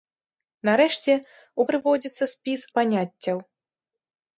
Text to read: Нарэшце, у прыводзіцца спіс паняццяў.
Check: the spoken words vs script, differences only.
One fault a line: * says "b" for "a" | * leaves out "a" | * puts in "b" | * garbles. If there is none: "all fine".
all fine